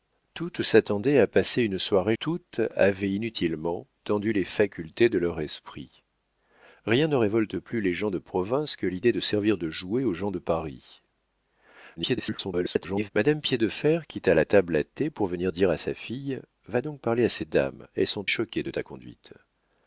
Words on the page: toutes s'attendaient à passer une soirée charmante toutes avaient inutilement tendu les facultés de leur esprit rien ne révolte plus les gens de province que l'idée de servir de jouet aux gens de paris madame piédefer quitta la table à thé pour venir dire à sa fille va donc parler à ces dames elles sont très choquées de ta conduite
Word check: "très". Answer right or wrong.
wrong